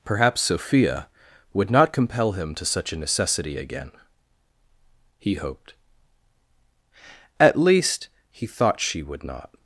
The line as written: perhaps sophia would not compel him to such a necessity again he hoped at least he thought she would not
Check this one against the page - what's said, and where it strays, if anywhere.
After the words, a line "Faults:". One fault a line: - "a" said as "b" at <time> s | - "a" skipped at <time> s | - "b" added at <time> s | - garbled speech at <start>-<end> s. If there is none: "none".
perhaps sophia would not compel him to such a necessity again he hoped at least he thought she would not
Faults:
none